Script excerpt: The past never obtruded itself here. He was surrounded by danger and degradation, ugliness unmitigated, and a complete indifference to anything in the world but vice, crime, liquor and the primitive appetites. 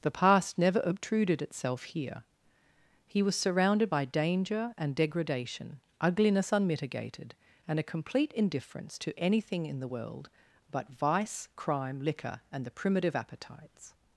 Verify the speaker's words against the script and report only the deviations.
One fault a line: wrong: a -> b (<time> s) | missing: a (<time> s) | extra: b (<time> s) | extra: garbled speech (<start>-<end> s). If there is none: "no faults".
no faults